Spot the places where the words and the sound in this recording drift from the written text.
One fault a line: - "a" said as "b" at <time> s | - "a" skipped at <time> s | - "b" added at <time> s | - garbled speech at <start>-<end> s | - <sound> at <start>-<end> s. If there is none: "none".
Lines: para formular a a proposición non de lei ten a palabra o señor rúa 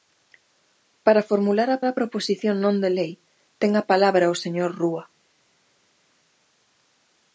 none